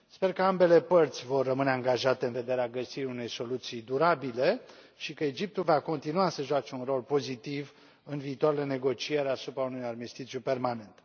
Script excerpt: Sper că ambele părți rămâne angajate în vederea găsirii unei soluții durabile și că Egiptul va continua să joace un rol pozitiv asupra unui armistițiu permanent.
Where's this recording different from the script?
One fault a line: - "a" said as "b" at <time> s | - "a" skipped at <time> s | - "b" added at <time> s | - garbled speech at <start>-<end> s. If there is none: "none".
- "vor" added at 1.2 s
- "în viitoarele negocieri" added at 8.0 s